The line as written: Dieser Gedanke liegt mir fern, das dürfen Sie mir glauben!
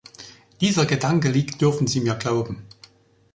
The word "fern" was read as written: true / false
false